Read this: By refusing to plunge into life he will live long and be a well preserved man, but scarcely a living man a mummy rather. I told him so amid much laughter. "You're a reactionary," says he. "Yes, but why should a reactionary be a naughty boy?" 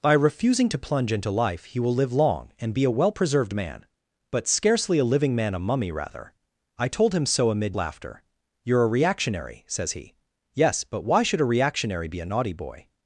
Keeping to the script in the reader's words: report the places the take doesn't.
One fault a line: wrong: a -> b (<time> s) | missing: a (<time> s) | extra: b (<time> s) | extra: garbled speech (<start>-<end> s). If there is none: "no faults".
missing: much (7.8 s)